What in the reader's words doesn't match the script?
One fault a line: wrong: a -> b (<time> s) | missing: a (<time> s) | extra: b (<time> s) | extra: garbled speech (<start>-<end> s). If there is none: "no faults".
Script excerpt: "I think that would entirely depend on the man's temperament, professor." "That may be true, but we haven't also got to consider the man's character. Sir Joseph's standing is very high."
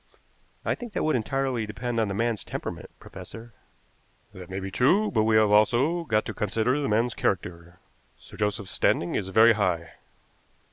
wrong: haven't -> have (5.4 s)